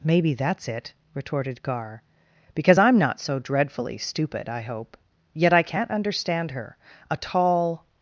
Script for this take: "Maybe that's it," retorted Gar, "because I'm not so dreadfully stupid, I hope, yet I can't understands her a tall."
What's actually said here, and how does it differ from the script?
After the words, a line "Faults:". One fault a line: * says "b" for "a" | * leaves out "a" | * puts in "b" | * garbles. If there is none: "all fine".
"Maybe that's it," retorted Gar, "because I'm not so dreadfully stupid, I hope, yet I can't understand her a tall."
Faults:
* says "understand" for "understands"